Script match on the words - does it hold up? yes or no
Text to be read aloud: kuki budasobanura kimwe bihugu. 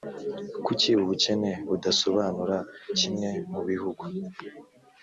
no